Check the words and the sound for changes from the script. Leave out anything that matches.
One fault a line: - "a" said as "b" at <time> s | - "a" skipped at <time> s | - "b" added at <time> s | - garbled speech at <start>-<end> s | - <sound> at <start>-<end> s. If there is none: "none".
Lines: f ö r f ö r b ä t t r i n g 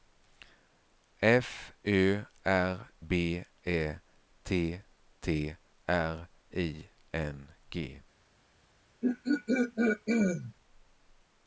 - "f ö r" skipped at 2.9 s
- throat clearing at 9.0-10.5 s